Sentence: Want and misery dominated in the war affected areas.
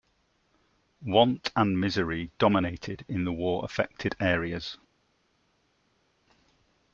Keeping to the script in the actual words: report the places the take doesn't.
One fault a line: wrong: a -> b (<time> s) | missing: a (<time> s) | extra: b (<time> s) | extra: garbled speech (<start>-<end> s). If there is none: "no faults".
no faults